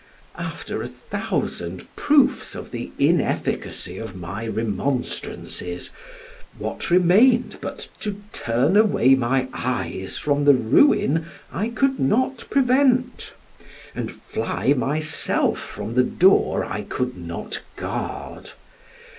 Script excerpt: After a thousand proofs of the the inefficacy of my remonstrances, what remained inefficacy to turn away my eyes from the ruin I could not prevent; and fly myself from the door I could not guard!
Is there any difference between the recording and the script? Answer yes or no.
yes